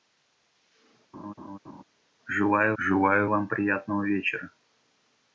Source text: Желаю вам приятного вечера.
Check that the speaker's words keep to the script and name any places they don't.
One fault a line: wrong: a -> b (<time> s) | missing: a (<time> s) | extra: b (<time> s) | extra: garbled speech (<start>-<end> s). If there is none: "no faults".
extra: желаю (2.8 s)